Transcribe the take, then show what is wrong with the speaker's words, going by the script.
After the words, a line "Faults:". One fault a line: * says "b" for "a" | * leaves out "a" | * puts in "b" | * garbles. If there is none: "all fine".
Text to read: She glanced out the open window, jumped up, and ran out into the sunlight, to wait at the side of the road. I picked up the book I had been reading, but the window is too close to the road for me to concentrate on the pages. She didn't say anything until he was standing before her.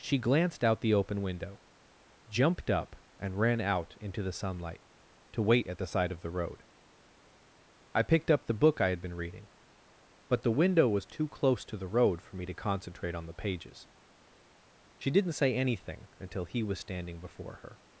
She glanced out the open window, jumped up, and ran out into the sunlight, to wait at the side of the road. I picked up the book I had been reading, but the window was too close to the road for me to concentrate on the pages. She didn't say anything until he was standing before her.
Faults:
* says "was" for "is"